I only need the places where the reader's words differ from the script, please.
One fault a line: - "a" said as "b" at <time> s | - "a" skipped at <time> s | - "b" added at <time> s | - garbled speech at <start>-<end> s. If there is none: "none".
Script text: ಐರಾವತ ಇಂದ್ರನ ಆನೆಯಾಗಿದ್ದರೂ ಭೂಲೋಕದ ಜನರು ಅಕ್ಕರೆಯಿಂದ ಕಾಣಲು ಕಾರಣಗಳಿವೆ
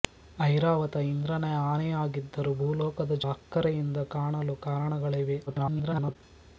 - "ಜನರು" skipped at 3.2 s
- garbled speech at 5.5-6.2 s